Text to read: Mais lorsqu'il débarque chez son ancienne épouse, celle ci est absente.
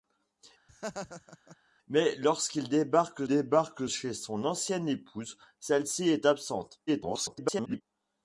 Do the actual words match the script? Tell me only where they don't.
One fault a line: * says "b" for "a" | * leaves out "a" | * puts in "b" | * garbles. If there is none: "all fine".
* puts in "débarque"
* garbles